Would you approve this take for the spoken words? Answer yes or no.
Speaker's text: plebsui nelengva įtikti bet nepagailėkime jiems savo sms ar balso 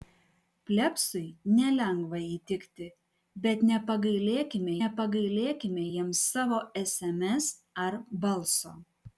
no